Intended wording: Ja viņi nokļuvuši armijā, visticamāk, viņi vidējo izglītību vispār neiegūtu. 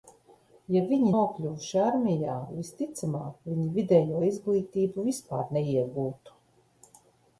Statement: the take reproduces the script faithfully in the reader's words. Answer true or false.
true